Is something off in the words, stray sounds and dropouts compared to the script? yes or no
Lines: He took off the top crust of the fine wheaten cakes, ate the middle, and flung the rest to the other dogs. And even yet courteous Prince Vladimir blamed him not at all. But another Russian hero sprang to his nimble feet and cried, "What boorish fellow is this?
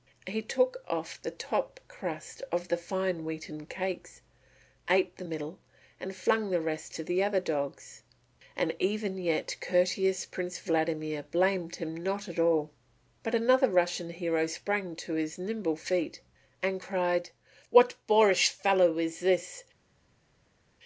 no